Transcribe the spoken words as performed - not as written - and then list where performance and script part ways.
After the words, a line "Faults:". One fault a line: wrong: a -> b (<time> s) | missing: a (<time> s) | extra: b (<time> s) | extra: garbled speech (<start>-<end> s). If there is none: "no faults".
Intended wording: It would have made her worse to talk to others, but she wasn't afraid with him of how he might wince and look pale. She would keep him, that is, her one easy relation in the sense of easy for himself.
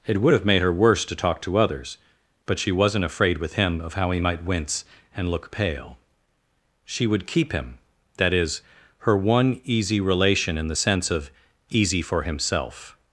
It would have made her worse to talk to others, but she wasn't afraid with him of how he might wince and look pale. She would keep him, that is, her one easy relation in the sense of easy for himself.
Faults:
no faults